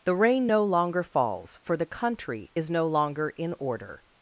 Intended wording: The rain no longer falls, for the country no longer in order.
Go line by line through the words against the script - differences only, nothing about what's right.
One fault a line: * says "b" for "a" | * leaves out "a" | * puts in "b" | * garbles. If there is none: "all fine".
* puts in "is"